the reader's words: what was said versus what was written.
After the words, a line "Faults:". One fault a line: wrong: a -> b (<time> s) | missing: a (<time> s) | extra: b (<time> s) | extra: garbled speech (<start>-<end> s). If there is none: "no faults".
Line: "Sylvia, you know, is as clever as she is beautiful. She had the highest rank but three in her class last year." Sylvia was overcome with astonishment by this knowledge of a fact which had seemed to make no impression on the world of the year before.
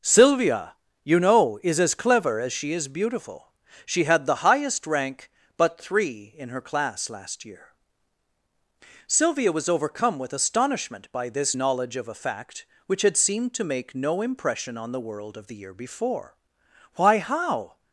"Sylvia, you know, is as clever as she is beautiful. She had the highest rank but three in her class last year." Sylvia was overcome with astonishment by this knowledge of a fact which had seemed to make no impression on the world of the year before. "Why, how
Faults:
extra: Why how (16.9 s)